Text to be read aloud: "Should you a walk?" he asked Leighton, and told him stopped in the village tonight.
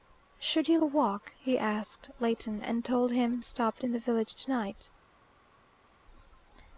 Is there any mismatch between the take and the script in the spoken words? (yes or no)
no